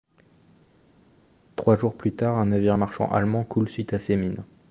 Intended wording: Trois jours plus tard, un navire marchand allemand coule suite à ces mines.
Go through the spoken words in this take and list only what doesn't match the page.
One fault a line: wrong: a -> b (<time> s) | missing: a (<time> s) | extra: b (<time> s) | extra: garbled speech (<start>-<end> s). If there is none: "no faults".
no faults